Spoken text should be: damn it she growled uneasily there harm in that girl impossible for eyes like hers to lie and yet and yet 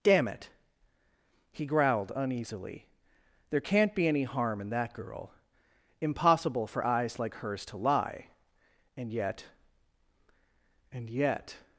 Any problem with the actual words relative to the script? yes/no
yes